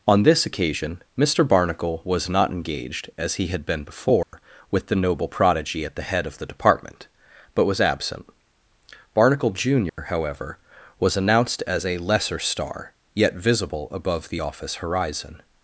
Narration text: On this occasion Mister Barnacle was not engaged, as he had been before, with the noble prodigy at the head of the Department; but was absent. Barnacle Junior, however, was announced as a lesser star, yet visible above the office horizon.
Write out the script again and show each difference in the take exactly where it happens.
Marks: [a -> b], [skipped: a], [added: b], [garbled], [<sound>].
On this occasion Mister Barnacle was not engaged, as he had been before, [dropout] with the noble prodigy at the head of the Department; but was absent. Barnacle Junior, [dropout] however, was announced as a lesser star, yet visible above the office horizon.